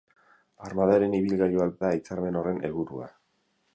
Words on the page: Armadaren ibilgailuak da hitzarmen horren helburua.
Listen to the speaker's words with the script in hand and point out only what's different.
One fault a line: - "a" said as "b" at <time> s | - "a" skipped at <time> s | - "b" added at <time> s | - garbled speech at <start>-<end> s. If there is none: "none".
none